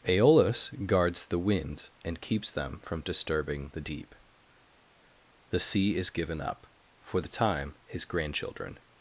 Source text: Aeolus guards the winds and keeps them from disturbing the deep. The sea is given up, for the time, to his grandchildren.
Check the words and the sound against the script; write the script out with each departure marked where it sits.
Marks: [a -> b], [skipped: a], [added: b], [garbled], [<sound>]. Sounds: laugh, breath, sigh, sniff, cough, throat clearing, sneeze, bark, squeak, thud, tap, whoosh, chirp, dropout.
Aeolus guards the winds and keeps them from disturbing the deep. The sea is given up, for the time, [skipped: to] his grandchildren.